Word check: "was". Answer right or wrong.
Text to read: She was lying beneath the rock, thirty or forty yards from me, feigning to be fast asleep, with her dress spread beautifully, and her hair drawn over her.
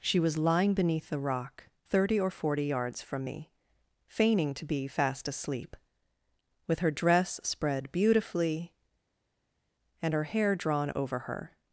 right